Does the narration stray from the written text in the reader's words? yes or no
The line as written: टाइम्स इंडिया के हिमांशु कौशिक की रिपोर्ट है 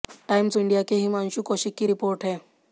no